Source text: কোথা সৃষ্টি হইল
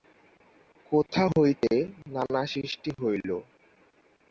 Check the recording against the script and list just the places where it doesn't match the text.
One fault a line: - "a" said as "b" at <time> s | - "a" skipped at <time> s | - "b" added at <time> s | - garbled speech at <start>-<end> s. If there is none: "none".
- "হইতে নানা" added at 1.4 s